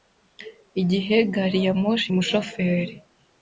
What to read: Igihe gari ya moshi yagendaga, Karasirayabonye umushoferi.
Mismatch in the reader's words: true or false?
true